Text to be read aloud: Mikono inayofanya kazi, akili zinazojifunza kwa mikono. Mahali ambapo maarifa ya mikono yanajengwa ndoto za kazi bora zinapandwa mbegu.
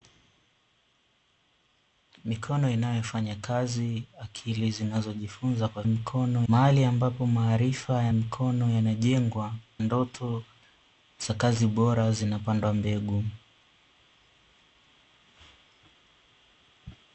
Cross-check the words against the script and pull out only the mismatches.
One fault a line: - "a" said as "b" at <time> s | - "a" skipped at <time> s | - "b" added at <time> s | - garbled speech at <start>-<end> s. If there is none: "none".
none